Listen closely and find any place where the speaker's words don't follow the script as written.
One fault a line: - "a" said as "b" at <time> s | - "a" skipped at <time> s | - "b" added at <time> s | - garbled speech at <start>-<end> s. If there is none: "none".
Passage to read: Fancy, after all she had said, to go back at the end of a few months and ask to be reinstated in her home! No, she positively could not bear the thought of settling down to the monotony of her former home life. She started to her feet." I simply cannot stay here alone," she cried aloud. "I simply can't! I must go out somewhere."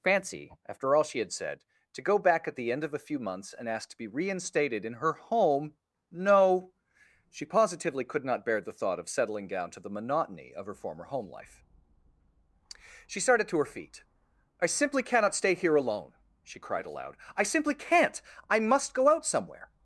none